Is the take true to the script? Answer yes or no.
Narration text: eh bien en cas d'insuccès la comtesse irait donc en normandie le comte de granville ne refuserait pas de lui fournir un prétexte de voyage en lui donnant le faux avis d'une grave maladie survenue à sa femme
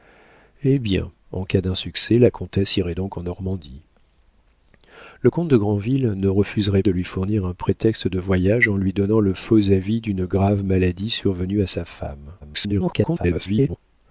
no